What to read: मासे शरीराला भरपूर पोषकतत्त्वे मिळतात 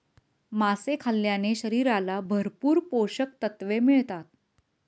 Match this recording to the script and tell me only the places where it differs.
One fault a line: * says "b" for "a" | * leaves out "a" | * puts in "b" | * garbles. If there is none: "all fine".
* puts in "खाल्ल्याने"